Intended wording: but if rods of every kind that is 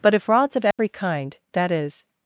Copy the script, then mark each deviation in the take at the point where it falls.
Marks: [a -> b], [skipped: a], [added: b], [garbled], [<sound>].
but if rods of every [dropout] kind that is